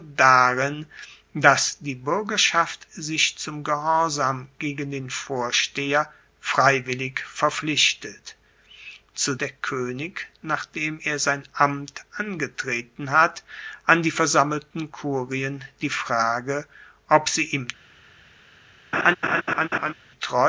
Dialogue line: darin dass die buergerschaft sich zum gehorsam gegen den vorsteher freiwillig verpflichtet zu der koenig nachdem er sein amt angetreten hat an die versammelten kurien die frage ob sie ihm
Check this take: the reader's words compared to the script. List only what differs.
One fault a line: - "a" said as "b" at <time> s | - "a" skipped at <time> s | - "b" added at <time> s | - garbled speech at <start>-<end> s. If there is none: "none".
none